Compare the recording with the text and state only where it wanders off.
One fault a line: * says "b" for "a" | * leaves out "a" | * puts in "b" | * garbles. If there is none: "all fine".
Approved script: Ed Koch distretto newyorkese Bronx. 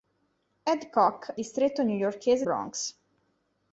all fine